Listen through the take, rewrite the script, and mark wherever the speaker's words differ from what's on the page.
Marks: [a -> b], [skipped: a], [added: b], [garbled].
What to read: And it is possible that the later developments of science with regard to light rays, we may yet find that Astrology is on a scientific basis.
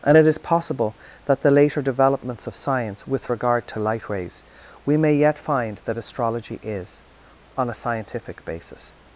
And it is possible that the later developments of science with regard to light rays, we may yet find that Astrology is on a scientific basis.